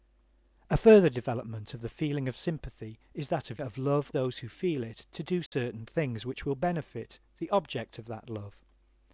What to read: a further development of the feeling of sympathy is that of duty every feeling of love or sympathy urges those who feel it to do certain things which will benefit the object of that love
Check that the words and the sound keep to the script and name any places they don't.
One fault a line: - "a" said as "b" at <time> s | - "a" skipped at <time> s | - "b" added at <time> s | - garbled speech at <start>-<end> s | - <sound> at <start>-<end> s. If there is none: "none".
- "duty every feeling" skipped at 3.6 s
- "or sympathy urges" skipped at 4.1 s
- dropout at 5.5-5.5 s